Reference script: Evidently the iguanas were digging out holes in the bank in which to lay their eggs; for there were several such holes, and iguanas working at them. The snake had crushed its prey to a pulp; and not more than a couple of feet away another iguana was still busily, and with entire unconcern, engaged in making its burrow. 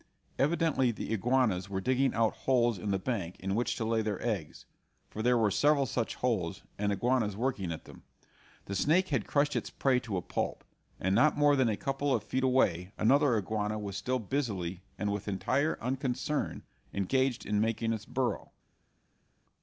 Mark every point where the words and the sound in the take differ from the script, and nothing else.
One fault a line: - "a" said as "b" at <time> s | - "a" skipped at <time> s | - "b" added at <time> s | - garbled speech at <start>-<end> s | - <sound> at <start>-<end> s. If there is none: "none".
none